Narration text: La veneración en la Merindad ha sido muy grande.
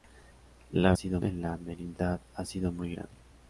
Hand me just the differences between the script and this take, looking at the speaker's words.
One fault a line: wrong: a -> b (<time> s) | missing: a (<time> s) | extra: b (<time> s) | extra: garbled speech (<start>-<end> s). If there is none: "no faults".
wrong: veneración -> sido (0.9 s)